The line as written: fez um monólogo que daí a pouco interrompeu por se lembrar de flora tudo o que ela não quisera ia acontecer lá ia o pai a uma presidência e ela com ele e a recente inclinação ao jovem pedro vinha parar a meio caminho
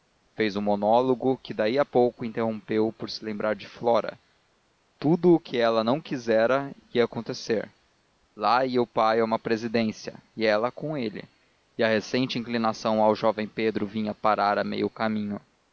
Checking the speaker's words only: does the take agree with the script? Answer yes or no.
yes